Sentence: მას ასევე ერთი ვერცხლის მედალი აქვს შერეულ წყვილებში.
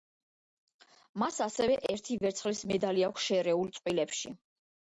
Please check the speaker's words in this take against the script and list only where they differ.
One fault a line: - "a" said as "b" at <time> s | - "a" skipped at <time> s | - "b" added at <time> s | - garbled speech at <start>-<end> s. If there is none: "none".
none